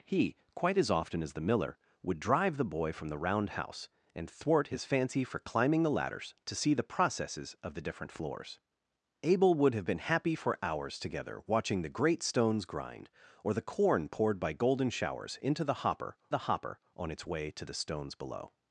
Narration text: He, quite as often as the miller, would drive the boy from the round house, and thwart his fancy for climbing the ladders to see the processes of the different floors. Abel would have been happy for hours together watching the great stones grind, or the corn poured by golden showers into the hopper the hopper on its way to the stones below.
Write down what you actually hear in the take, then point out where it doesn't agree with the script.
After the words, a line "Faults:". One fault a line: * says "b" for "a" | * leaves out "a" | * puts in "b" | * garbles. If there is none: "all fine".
He, quite as often as the miller, would drive the boy from the round house, and thwart his fancy for climbing the ladders to see the processes of the different floors. Abel would have been happy for hours together watching the great stones grind, or the corn poured by golden showers into the hopper the hopper on its way to the stones below.
Faults:
all fine